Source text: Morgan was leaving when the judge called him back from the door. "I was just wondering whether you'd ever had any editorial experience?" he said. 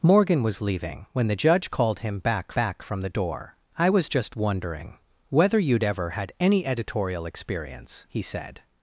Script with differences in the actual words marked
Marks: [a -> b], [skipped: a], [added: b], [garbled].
Morgan was leaving when the judge called him back [added: back] from the door. "I was just wondering whether you'd ever had any editorial experience?" he said.